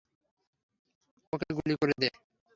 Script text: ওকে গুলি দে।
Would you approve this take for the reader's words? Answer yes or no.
no